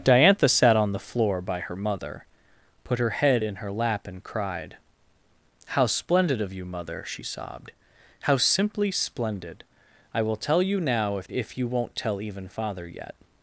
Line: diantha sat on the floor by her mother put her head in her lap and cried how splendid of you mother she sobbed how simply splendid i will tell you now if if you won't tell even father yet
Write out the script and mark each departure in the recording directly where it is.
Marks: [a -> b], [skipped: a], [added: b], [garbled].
diantha sat on the floor by her mother put her head in her lap and cried how splendid of you mother she sobbed how simply splendid i will tell you now if if you won't tell even father yet